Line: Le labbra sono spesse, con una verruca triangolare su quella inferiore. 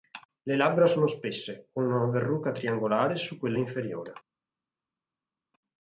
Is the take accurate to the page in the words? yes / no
yes